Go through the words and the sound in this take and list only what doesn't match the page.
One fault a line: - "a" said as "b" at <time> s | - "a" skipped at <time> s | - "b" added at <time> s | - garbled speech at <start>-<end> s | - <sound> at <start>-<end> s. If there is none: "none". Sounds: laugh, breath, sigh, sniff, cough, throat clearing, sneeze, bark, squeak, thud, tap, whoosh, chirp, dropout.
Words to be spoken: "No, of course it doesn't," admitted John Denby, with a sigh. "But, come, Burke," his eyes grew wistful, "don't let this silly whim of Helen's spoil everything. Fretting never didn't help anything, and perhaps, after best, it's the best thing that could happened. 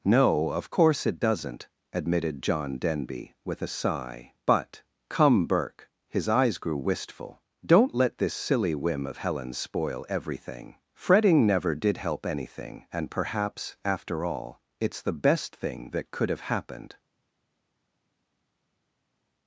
- "didn't" said as "did" at 11.7 s
- "best" said as "all" at 14.2 s
- "have" added at 16.3 s